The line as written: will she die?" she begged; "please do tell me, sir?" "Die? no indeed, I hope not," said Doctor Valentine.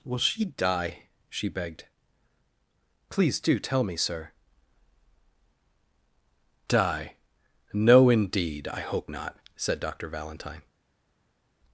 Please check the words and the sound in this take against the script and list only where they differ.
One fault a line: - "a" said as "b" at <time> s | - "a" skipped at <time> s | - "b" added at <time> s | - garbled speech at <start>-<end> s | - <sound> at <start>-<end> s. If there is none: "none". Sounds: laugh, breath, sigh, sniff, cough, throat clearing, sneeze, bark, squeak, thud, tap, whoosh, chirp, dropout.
none